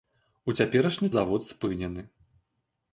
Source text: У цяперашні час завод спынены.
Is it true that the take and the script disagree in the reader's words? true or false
true